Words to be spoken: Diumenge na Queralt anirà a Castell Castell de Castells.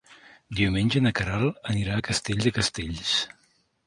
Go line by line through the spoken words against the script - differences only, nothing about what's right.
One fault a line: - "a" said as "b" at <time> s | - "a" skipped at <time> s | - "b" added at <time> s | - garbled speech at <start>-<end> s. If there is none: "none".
- "Castell" skipped at 2.4 s